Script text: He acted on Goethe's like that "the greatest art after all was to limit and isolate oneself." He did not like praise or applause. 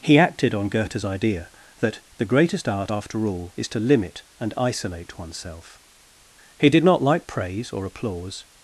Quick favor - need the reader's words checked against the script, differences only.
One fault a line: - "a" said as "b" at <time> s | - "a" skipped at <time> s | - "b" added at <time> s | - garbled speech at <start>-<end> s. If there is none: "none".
- "like" said as "idea" at 1.0 s
- "was" said as "is" at 3.5 s